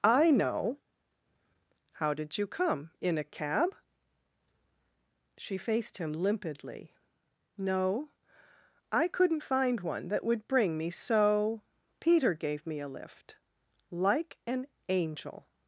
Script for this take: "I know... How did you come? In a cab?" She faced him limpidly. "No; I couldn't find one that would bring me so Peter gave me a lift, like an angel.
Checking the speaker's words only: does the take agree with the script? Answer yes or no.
yes